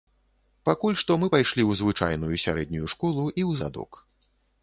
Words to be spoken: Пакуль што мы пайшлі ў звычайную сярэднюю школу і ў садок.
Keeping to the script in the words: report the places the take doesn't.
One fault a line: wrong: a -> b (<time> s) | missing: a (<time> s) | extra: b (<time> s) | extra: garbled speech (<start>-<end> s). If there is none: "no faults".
no faults